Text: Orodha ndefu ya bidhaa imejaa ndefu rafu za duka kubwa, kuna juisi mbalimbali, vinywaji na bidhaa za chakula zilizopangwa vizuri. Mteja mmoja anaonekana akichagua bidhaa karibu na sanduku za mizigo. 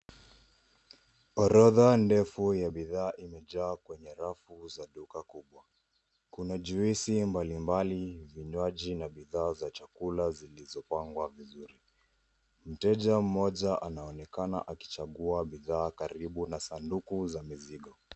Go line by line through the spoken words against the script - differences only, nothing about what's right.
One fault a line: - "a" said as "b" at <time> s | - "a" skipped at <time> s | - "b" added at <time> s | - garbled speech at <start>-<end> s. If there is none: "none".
- "ndefu" said as "kwenye" at 3.8 s